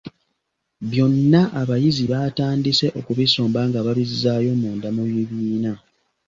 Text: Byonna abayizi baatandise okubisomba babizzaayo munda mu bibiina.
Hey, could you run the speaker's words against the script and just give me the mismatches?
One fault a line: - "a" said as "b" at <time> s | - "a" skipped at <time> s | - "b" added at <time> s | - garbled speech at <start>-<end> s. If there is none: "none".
- "nga" added at 3.7 s